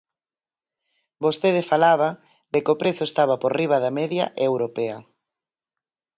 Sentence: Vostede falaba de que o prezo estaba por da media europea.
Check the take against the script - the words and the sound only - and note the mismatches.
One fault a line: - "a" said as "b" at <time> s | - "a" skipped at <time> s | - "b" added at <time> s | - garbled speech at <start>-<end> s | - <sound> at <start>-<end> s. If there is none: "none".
- "riba" added at 3.6 s